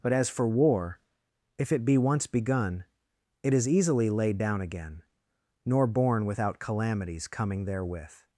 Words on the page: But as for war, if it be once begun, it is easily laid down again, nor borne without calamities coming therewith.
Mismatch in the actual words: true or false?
false